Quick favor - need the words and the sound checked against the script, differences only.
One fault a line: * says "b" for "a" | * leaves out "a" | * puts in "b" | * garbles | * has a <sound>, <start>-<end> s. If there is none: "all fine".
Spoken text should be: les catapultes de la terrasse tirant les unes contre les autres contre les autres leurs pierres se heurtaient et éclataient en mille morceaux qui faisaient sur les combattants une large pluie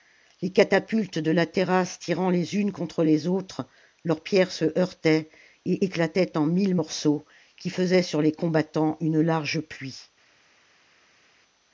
* leaves out "contre les autres"